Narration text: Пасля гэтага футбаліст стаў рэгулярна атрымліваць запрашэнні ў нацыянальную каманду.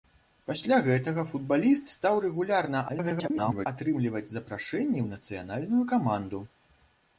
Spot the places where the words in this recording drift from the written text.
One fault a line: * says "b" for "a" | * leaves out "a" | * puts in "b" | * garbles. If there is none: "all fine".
* garbles